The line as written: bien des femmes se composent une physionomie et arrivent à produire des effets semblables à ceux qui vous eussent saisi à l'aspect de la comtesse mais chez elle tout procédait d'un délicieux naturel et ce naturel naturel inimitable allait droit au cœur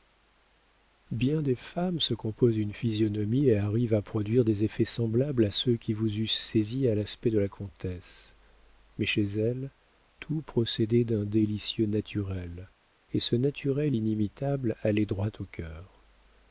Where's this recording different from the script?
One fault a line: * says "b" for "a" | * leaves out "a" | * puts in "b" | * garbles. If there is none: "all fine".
* leaves out "naturel"